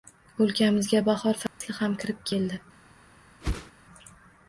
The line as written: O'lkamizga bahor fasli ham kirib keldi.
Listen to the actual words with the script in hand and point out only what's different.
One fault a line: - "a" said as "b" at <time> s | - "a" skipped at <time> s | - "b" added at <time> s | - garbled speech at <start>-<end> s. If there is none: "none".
none